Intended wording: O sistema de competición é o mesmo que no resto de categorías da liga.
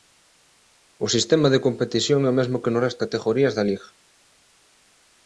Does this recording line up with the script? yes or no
no